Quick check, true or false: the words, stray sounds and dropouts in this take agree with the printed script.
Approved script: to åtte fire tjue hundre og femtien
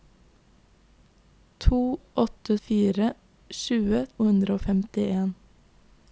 true